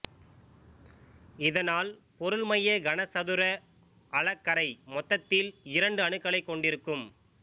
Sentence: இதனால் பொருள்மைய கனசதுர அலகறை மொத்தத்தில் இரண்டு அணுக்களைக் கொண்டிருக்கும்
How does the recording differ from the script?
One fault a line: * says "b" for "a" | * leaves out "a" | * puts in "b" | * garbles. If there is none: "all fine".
all fine